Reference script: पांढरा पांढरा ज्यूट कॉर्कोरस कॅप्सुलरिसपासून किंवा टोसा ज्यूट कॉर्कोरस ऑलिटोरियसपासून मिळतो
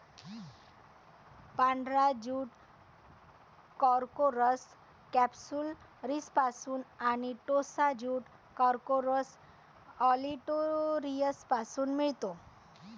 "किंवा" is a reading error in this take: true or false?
true